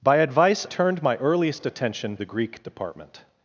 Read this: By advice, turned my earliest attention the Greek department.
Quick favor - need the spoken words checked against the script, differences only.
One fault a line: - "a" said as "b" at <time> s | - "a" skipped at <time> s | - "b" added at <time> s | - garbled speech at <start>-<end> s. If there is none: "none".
none